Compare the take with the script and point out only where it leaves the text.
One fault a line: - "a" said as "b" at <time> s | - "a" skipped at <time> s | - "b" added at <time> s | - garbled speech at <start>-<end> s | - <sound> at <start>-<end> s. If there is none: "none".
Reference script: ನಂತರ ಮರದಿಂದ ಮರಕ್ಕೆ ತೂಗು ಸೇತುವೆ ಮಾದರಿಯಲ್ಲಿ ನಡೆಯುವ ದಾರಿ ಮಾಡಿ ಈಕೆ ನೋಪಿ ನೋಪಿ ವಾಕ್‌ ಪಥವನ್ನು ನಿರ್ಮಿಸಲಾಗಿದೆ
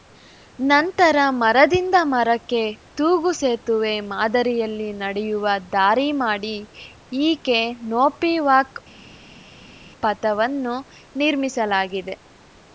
- "ನೋಪಿ" skipped at 8.3 s